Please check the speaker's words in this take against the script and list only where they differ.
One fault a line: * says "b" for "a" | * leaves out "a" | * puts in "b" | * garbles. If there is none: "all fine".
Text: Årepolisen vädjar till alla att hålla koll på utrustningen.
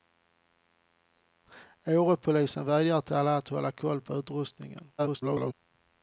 * garbles